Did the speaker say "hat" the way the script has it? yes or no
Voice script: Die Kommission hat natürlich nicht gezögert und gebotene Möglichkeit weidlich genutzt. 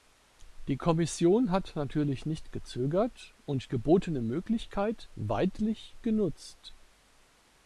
yes